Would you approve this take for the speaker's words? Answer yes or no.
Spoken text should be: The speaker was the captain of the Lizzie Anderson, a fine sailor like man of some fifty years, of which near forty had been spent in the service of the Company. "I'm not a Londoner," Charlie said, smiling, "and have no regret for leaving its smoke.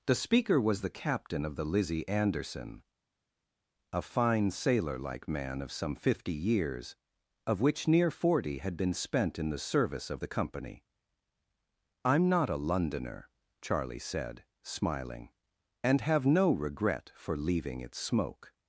yes